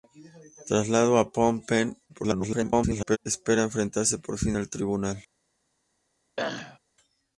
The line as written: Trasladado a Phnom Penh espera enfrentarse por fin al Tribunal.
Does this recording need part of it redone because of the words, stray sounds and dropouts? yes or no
yes